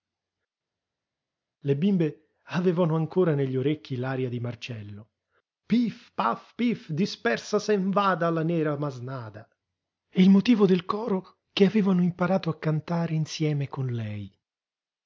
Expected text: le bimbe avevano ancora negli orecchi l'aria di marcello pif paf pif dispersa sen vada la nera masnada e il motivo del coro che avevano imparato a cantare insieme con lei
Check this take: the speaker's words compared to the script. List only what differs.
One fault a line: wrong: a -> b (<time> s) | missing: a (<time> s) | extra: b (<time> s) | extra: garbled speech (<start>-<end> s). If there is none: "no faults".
no faults